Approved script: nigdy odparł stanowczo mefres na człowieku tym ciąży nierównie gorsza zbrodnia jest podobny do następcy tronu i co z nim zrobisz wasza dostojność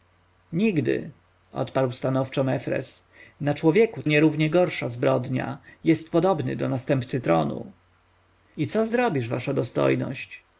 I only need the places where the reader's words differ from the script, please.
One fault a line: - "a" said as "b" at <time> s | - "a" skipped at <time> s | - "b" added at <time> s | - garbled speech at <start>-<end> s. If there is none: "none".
- "tym ciąży" skipped at 4.0 s
- "nim" skipped at 8.9 s